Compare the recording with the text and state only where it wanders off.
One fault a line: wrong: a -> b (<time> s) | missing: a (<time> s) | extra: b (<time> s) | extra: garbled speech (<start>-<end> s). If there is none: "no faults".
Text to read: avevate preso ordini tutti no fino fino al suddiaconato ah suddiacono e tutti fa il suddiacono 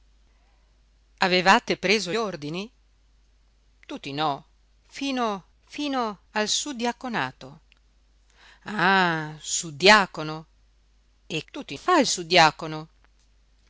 no faults